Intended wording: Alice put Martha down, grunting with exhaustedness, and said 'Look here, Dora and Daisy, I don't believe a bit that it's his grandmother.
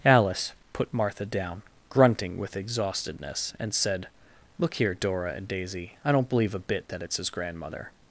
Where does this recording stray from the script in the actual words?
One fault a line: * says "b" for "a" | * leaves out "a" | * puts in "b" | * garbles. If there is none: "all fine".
all fine